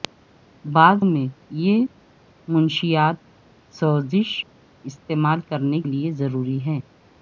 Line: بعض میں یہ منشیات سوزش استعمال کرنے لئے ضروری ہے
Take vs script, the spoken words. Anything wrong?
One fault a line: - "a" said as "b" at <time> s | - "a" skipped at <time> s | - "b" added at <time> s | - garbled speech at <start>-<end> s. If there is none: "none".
none